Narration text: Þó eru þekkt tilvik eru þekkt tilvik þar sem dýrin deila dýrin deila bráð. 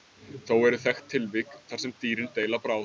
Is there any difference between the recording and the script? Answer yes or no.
yes